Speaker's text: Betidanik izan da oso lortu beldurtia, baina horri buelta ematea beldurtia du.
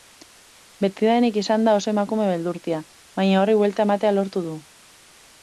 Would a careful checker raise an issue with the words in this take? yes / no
yes